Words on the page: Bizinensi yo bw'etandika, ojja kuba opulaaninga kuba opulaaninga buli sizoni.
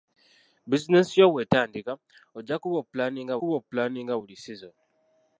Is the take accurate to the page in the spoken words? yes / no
yes